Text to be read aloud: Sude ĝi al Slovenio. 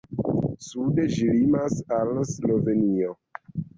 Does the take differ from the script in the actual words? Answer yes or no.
yes